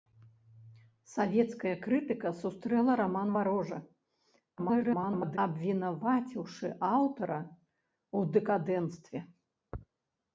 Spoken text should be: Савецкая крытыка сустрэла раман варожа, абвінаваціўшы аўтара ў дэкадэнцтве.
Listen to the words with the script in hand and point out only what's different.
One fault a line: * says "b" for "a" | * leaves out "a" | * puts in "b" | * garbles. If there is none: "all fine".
* garbles